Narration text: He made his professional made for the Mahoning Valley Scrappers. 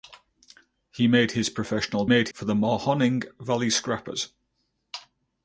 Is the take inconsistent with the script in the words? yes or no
no